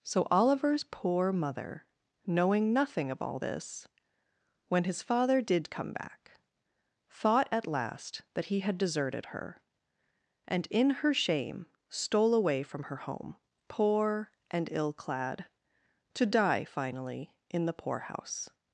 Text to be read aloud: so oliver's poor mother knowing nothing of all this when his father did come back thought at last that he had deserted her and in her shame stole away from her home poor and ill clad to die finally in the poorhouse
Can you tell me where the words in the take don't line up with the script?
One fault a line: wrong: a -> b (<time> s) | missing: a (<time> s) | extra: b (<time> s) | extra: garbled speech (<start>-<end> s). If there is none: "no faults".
no faults